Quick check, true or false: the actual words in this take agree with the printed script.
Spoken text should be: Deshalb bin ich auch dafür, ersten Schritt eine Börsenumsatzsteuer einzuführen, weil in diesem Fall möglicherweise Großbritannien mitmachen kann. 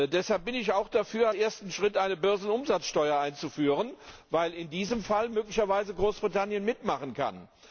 true